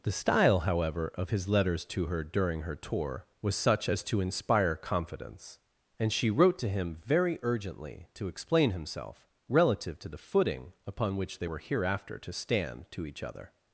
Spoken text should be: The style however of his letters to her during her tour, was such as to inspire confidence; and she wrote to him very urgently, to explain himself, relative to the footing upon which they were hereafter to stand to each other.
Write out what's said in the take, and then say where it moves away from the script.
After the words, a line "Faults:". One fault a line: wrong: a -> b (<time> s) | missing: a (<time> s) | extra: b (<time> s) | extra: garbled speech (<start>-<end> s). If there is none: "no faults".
The style however of his letters to her during her tour, was such as to inspire confidence; and she wrote to him very urgently, to explain himself, relative to the footing upon which they were hereafter to stand to each other.
Faults:
no faults